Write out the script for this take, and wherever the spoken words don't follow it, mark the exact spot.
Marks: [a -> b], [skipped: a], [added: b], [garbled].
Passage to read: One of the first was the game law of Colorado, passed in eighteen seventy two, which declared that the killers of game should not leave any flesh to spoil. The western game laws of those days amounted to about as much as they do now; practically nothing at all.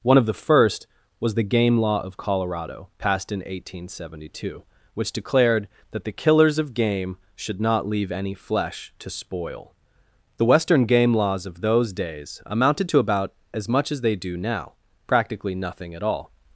One of the first was the game law of Colorado, passed in eighteen seventy two, which declared that the killers of game should not leave any flesh to spoil. The western game laws of those days amounted to about as much as they do now; practically nothing at all.